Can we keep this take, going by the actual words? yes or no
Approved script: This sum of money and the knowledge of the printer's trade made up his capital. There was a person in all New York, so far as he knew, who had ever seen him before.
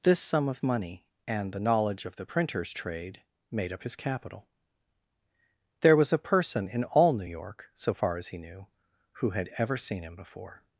yes